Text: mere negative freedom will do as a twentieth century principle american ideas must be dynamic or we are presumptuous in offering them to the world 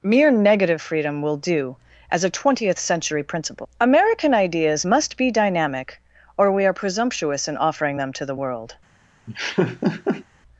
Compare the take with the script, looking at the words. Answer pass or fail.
pass